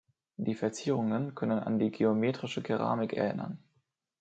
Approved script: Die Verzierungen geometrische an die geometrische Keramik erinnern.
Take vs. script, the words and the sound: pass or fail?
fail